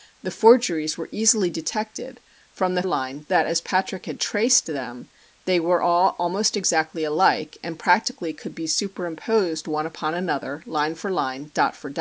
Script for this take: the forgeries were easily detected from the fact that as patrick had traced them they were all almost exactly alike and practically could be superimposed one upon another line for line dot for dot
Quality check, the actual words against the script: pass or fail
fail